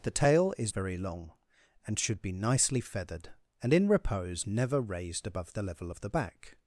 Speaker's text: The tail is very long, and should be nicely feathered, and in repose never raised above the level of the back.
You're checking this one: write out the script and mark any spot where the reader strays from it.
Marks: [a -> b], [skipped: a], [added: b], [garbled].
The tail is very long, and should be nicely feathered, and in repose never raised above the level of the back.